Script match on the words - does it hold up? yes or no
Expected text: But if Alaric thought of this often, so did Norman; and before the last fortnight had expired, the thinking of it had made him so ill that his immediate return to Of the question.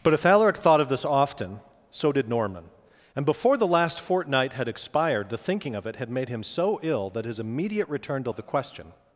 yes